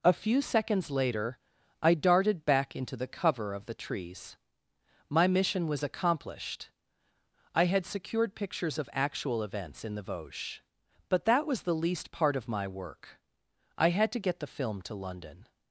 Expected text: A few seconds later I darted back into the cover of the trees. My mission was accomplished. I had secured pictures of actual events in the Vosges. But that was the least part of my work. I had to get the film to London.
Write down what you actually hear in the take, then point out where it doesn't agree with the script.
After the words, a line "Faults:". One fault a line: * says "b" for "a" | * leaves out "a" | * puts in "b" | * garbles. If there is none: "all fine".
A few seconds later I darted back into the cover of the trees. My mission was accomplished. I had secured pictures of actual events in the Vosges. But that was the least part of my work. I had to get the film to London.
Faults:
all fine